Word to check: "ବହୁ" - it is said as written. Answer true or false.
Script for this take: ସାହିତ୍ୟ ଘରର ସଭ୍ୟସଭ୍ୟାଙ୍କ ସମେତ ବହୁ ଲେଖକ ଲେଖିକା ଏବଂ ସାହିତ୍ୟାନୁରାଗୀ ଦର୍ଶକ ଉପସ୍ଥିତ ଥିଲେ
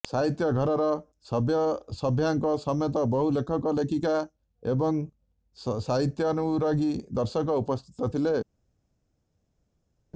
true